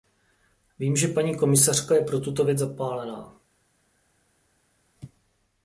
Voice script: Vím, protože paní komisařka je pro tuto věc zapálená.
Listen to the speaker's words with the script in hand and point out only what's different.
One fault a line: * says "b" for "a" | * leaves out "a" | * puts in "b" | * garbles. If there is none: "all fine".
* says "že" for "protože"